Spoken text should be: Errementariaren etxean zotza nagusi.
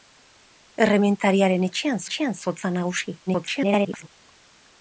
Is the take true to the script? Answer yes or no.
no